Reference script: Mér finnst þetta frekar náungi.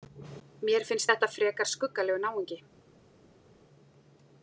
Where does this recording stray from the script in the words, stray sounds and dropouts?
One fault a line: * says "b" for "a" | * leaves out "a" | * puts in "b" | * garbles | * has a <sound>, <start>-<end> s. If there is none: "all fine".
* puts in "skuggalegur"